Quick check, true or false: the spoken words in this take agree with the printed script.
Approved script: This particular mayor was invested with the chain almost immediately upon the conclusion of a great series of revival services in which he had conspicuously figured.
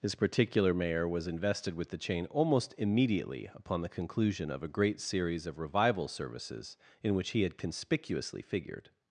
true